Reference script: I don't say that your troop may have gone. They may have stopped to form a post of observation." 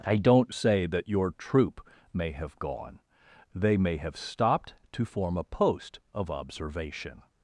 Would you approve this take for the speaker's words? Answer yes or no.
yes